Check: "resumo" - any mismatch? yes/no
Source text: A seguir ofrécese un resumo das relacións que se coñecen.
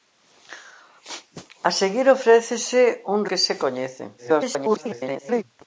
yes